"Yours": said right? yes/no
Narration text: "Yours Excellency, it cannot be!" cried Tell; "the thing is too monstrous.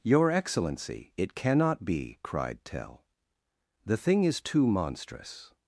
no